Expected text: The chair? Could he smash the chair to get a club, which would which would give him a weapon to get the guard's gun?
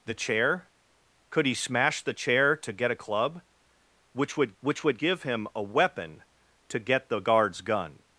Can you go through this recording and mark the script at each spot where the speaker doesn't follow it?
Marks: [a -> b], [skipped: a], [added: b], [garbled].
The chair? Could he smash the chair to get a club, which would which would give him a weapon to get the guard's gun?